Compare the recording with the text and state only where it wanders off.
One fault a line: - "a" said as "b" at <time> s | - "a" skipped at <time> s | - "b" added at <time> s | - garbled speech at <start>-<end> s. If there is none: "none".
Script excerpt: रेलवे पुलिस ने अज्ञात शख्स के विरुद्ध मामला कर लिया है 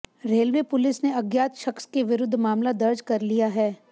- "दर्ज" added at 2.8 s